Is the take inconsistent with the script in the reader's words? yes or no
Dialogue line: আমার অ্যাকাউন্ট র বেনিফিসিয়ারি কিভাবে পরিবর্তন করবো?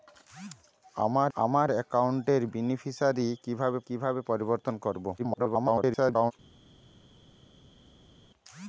yes